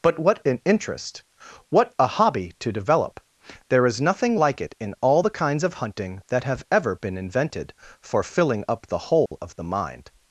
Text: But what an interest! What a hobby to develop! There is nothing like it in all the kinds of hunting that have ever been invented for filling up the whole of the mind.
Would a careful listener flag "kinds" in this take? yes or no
no